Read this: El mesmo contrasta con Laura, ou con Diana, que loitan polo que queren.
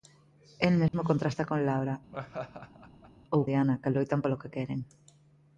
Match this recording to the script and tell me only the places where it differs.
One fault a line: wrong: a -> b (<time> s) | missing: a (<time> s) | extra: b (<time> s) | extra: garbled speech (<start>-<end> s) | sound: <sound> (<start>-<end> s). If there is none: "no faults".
sound: dropout (0.9-0.9 s)
sound: laugh (2.1-3.1 s)
missing: con (3.4 s)